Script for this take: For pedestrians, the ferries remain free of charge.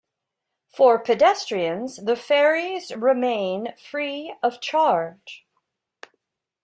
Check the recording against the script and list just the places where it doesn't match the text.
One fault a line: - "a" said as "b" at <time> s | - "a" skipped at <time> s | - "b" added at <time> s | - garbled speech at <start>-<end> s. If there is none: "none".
none